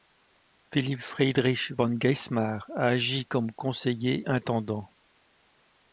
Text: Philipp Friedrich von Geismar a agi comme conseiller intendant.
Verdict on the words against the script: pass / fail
pass